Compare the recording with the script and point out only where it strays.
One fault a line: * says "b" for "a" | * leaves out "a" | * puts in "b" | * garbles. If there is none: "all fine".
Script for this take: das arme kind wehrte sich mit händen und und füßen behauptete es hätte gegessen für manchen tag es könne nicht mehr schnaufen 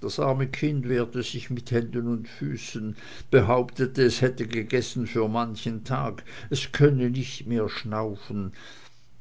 * leaves out "und"